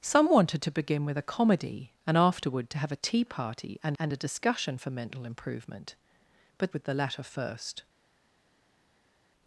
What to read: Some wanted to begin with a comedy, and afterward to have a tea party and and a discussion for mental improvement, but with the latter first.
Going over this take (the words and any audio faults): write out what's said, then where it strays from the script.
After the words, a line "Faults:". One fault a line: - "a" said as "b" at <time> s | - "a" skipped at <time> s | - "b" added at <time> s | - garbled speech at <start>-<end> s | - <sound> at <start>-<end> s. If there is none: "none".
Some wanted to begin with a comedy, and afterward to have a tea party and and a discussion for mental improvement, but with the latter first.
Faults:
none